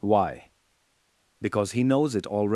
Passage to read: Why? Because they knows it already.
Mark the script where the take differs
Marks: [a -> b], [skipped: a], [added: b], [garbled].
Why? Because [they -> he] knows it already.